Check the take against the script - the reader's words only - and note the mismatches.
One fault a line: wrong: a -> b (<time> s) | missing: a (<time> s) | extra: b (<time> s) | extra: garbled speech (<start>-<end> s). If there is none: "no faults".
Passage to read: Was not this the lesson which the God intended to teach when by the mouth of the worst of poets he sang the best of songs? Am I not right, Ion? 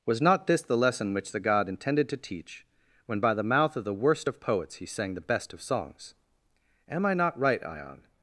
no faults